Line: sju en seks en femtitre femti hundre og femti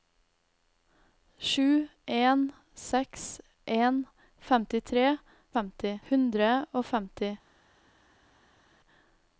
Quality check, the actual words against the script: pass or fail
pass